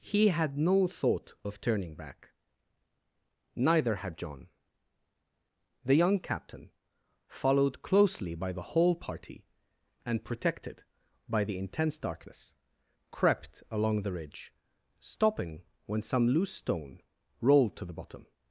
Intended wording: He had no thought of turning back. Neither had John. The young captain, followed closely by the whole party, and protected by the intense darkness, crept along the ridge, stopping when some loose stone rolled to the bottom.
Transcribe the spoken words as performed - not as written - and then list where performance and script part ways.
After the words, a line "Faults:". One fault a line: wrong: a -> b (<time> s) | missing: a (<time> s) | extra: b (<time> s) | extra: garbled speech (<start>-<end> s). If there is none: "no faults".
He had no thought of turning back. Neither had John. The young captain, followed closely by the whole party, and protected by the intense darkness, crept along the ridge, stopping when some loose stone rolled to the bottom.
Faults:
no faults